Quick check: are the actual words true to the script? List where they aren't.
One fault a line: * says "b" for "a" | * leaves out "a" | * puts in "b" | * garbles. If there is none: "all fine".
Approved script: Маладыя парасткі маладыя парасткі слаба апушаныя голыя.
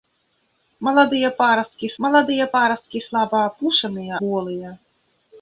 all fine